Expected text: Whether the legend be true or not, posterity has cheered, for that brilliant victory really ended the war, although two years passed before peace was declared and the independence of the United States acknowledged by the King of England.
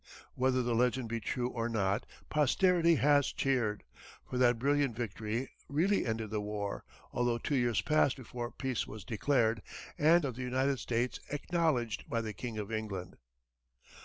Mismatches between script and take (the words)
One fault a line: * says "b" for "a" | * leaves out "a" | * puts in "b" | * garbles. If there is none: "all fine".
* leaves out "the independence"